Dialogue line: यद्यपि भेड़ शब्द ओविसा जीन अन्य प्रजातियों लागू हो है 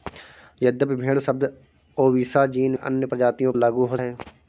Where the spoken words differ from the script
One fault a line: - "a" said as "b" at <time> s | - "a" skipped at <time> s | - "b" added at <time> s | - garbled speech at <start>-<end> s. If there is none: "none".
none